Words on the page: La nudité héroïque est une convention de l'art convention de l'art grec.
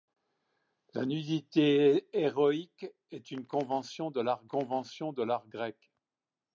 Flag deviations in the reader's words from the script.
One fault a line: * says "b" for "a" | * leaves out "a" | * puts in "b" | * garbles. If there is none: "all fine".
all fine